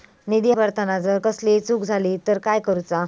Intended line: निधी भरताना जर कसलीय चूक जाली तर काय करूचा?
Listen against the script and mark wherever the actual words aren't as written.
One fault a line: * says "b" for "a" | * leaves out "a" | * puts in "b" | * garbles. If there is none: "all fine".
all fine